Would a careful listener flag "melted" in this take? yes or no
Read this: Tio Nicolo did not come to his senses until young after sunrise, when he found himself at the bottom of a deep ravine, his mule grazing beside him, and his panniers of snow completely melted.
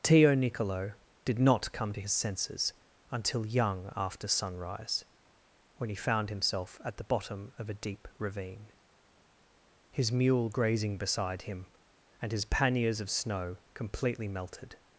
no